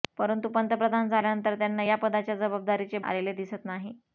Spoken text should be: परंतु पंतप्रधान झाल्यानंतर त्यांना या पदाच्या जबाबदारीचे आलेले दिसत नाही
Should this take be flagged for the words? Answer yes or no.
no